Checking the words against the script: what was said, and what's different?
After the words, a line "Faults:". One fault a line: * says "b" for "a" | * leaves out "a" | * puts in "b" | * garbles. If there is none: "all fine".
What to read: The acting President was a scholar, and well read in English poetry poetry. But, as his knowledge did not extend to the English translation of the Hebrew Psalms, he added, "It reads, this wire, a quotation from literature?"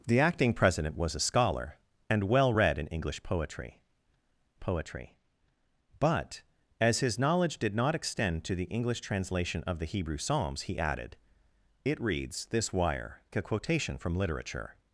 The acting President was a scholar, and well read in English poetry poetry. But, as his knowledge did not extend to the English translation of the Hebrew Psalms, he added, "It reads, this wire, a quotation from literature?"
Faults:
all fine